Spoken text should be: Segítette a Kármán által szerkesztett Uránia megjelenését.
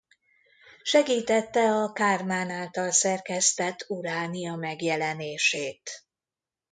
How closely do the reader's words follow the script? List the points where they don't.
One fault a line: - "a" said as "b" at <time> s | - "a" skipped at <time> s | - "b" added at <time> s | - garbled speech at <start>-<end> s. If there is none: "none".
none